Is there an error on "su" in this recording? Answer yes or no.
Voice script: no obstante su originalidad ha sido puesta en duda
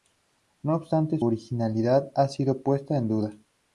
yes